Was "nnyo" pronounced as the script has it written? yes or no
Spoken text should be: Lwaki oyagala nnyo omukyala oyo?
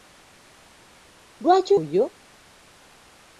no